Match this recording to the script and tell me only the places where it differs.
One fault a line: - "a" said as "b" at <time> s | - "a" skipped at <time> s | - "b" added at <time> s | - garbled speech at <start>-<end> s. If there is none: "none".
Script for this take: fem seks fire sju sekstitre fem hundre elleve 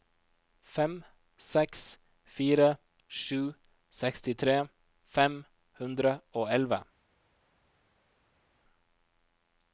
- "og" added at 6.4 s